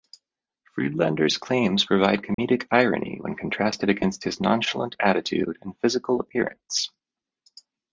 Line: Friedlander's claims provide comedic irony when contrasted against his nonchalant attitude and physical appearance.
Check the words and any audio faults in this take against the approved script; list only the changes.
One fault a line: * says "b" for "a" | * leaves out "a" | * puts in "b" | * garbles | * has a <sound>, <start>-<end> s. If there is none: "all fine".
* has a dropout, 2.3-2.4 s